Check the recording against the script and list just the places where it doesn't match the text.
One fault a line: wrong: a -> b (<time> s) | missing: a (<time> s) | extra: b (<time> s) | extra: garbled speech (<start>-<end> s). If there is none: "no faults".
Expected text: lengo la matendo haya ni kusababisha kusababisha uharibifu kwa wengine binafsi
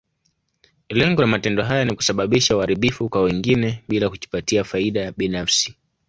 missing: kusababisha (2.6 s)
extra: bila kujipatia faida (3.9 s)